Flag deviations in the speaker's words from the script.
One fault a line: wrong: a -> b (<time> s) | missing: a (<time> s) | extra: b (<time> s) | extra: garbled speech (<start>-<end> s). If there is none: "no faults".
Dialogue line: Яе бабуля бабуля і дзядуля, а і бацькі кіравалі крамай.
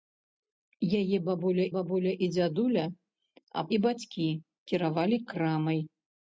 no faults